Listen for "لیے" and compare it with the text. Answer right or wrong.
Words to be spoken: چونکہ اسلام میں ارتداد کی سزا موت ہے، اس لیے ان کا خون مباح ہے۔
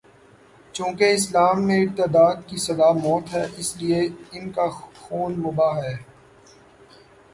right